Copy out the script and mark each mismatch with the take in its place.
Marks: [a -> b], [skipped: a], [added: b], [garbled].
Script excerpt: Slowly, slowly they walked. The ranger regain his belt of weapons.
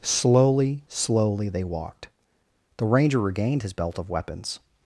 Slowly, slowly they walked. The ranger [regain -> regained] his belt of weapons.